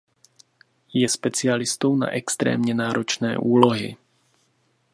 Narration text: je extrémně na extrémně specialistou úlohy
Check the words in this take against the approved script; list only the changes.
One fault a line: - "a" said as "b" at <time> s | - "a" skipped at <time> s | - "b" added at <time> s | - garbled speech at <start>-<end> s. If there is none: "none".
- "extrémně" said as "specialistou" at 1.1 s
- "specialistou" said as "náročné" at 2.7 s